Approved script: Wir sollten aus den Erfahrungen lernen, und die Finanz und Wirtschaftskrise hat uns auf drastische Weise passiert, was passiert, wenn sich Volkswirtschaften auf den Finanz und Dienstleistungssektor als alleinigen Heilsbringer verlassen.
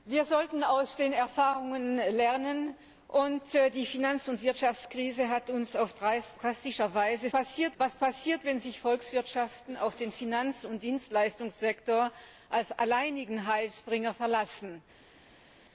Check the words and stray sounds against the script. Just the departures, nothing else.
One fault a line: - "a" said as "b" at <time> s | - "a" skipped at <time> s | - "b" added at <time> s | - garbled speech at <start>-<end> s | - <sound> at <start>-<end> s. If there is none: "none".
none